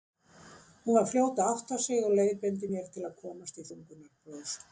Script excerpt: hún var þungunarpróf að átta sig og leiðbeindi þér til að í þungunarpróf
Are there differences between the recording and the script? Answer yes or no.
yes